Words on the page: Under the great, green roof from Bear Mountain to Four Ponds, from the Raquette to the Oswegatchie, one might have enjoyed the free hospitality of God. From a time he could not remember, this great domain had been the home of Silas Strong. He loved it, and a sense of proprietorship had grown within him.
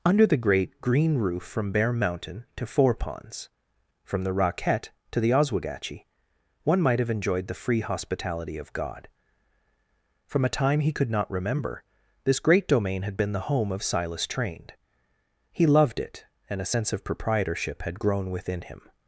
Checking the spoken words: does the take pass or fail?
fail